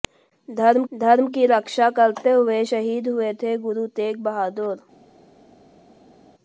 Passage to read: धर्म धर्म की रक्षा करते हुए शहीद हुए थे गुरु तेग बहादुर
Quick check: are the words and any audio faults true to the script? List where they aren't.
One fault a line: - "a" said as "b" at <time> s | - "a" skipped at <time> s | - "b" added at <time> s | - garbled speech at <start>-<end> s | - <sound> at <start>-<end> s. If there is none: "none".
none